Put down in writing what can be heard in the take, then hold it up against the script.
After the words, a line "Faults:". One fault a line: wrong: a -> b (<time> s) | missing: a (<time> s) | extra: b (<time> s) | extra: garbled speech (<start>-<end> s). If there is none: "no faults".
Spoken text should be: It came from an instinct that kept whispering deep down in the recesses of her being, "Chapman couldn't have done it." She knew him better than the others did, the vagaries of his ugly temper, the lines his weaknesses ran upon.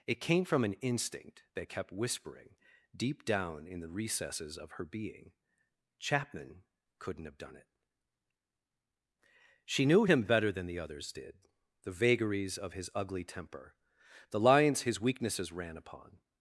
It came from an instinct that kept whispering deep down in the recesses of her being, "Chapman couldn't have done it." She knew him better than the others did, the vagaries of his ugly temper, the lines his weaknesses ran upon.
Faults:
no faults